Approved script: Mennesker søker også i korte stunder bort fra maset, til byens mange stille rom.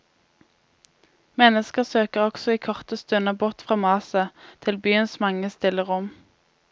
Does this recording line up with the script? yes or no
yes